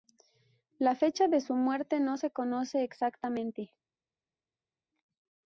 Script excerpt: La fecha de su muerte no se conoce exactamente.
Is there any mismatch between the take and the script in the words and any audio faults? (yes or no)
no